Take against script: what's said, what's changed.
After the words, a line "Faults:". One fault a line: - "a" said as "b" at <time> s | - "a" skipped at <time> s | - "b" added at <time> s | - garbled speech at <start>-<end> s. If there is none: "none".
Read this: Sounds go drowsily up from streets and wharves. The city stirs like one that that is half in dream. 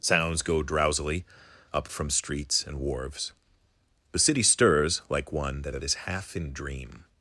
Sounds go drowsily up from streets and wharves. The city stirs like one that that is half in dream.
Faults:
none